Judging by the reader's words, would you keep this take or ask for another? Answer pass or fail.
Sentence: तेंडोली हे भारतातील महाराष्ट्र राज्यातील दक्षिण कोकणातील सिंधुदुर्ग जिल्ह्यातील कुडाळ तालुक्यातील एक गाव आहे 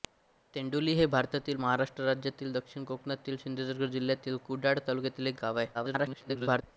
fail